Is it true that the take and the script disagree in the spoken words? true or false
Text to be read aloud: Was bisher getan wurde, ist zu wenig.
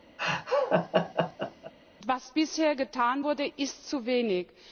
false